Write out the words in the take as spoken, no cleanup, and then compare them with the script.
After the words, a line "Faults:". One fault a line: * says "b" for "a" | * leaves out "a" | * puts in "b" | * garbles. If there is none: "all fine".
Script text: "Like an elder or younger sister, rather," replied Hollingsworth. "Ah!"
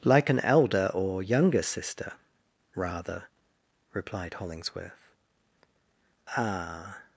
"Like an elder or younger sister, rather," replied Hollingsworth. "Ah!"
Faults:
all fine